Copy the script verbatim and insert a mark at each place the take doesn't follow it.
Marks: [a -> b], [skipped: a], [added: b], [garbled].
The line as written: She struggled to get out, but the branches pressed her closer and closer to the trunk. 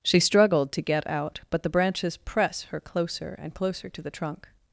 She struggled to get out, but the branches [pressed -> press] her closer and closer to the trunk.